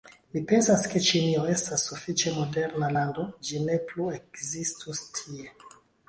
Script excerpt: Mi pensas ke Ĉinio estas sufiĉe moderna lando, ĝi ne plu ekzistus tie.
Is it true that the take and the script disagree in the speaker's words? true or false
false